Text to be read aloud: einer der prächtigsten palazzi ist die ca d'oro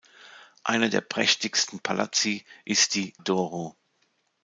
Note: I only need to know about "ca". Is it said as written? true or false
false